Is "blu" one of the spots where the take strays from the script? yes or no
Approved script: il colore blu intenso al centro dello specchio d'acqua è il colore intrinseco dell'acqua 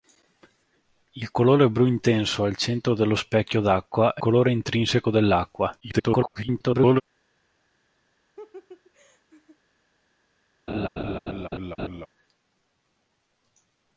no